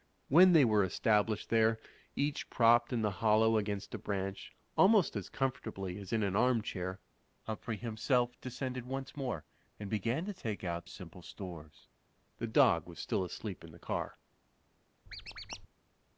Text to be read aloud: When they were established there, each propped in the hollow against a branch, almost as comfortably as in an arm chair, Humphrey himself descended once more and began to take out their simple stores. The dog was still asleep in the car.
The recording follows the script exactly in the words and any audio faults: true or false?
false